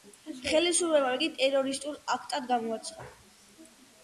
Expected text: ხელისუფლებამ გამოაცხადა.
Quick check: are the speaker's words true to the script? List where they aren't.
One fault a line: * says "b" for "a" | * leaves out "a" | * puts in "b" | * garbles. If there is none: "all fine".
* puts in "იგი ტერორისტულ აქტად"